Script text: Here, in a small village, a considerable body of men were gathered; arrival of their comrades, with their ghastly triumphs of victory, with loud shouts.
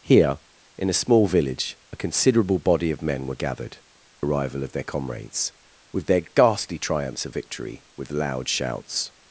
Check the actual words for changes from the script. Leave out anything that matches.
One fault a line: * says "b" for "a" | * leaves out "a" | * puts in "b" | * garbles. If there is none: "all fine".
all fine